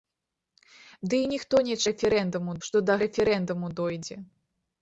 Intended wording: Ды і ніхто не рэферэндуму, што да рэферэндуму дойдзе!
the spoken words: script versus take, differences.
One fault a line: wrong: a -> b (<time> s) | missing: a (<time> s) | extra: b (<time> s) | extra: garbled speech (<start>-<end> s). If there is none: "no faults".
no faults